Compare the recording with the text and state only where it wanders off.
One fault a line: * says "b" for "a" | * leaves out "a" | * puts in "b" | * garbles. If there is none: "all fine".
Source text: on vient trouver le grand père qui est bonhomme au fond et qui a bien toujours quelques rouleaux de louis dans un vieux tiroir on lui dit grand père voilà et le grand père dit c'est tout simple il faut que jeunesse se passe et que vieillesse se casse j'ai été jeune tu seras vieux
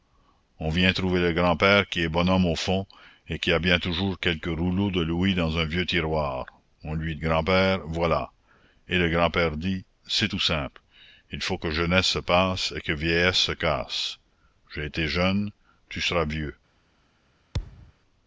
* leaves out "dit"